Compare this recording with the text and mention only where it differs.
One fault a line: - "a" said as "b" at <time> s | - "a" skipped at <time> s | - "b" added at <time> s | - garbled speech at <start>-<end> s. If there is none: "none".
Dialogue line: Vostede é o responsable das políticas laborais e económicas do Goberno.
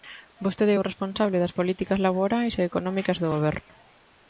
none